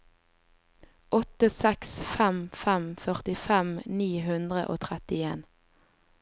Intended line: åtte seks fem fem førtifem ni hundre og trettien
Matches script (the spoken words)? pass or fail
pass